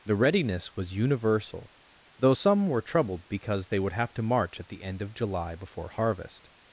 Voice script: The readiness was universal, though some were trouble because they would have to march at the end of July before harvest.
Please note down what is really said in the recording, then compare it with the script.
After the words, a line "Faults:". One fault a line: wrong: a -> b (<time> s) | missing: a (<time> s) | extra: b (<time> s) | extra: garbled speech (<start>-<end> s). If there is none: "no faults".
The readiness was universal, though some were troubled because they would have to march at the end of July before harvest.
Faults:
wrong: trouble -> troubled (2.8 s)